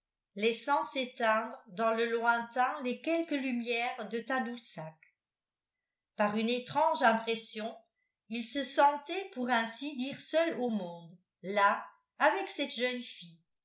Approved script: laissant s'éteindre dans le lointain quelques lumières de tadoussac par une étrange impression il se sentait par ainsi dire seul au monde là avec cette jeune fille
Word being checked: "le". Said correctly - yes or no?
yes